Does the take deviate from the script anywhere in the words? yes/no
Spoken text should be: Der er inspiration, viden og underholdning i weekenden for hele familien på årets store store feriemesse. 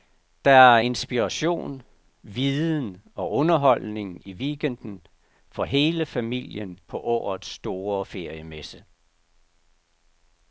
yes